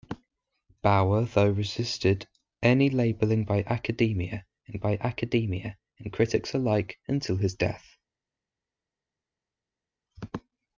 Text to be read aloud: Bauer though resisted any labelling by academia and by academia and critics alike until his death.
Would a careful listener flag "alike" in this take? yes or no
no